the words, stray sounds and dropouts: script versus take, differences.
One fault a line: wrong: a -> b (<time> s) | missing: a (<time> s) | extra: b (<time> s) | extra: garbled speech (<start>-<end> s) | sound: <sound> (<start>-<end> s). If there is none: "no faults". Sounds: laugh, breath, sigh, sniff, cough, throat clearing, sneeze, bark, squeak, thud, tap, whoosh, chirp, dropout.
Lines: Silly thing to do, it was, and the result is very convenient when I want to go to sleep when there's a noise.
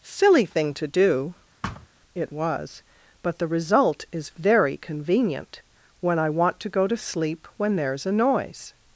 sound: thud (1.6-1.9 s)
wrong: and -> but (3.2 s)